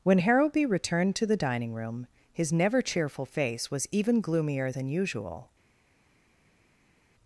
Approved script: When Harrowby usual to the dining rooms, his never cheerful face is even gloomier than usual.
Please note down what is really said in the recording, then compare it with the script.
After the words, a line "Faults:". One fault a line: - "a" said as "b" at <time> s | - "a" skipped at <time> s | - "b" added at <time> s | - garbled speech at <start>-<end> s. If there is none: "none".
When Harrowby returned to the dining room, his never cheerful face was even gloomier than usual.
Faults:
- "usual" said as "returned" at 0.6 s
- "rooms" said as "room" at 1.7 s
- "is" said as "was" at 3.7 s